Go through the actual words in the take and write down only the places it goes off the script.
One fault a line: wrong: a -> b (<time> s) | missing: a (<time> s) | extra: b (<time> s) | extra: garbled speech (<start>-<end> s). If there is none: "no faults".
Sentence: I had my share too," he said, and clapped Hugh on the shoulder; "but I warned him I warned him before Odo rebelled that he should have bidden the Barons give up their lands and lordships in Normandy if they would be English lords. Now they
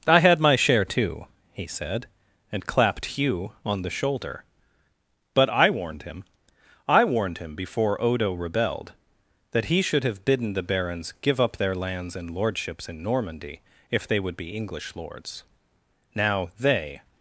no faults